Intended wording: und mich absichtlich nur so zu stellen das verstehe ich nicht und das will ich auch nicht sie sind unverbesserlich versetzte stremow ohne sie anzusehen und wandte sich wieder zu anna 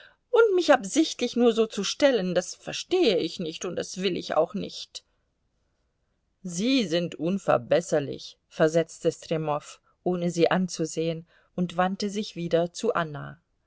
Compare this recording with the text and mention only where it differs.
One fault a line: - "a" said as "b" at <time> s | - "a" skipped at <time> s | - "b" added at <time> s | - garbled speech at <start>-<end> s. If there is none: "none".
none